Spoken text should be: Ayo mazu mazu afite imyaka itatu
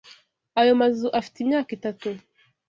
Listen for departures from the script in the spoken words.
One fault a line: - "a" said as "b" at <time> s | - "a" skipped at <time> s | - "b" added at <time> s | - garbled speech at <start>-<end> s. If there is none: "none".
- "mazu" skipped at 1.1 s